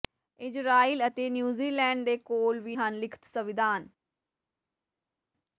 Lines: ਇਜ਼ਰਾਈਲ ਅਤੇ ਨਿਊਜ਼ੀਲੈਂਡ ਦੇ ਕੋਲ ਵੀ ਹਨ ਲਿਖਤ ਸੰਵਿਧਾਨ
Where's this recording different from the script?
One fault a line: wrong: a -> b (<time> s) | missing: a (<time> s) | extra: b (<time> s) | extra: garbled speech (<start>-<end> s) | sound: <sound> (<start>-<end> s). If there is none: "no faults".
no faults